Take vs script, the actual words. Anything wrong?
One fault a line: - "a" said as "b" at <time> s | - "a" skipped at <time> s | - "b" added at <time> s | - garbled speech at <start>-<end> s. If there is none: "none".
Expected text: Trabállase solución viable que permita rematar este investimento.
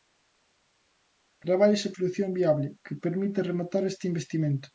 none